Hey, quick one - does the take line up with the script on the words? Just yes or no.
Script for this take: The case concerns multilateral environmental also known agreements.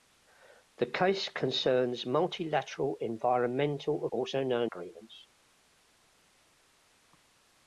yes